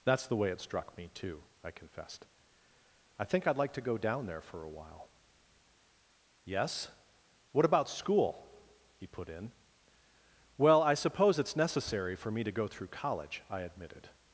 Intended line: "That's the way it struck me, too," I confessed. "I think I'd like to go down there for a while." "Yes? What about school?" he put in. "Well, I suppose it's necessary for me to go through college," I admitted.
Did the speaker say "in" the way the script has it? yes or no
yes